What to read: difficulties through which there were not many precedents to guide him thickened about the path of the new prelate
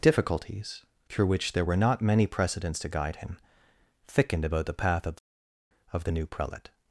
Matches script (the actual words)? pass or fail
fail